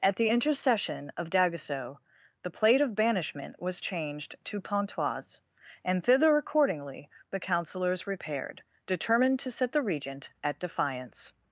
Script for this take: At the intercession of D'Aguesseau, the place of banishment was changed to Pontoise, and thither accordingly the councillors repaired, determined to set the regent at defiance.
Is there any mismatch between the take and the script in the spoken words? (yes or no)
yes